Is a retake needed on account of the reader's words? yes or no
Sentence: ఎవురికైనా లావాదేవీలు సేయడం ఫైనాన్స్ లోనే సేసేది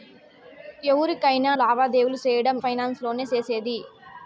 no